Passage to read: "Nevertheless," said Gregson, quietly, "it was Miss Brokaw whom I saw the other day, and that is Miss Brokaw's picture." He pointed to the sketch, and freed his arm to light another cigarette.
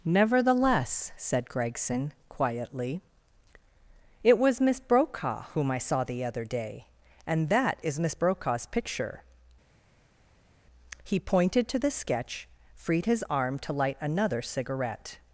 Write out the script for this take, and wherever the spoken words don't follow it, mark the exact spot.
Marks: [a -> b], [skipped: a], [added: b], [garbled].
"Nevertheless," said Gregson, quietly, "it was Miss Brokaw whom I saw the other day, and that is Miss Brokaw's picture." He pointed to the sketch, [skipped: and] freed his arm to light another cigarette.